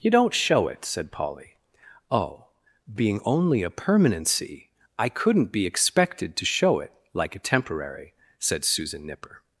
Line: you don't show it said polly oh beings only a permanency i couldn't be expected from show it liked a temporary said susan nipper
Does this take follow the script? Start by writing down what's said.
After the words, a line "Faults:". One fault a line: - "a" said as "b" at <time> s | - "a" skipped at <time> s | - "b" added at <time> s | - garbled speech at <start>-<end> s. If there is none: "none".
you don't show it said polly oh being only a permanency i couldn't be expected to show it like a temporary said susan nipper
Faults:
- "beings" said as "being" at 2.9 s
- "from" said as "to" at 6.3 s
- "liked" said as "like" at 7.1 s